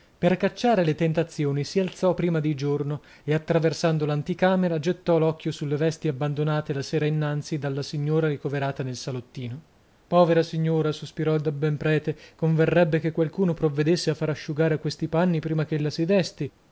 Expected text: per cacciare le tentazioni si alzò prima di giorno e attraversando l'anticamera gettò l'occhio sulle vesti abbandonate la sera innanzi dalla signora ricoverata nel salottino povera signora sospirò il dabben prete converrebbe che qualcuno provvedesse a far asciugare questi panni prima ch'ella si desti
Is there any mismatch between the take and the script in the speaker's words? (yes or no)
no